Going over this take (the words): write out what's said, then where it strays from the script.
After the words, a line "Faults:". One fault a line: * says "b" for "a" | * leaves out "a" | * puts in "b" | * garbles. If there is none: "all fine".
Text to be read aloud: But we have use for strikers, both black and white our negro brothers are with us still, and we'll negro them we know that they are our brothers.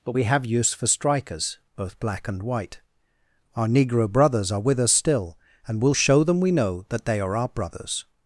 But we have use for strikers, both black and white our negro brothers are with us still, and we'll show them we know that they are our brothers.
Faults:
* says "show" for "negro"